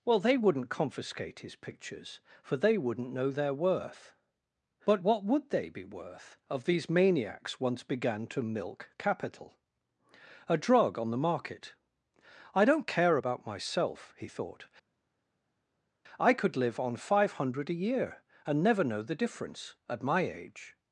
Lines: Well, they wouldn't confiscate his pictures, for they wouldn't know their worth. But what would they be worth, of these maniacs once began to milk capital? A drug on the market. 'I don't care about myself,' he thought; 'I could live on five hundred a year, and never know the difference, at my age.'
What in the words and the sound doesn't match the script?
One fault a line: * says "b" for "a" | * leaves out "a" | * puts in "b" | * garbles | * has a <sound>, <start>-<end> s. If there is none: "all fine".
all fine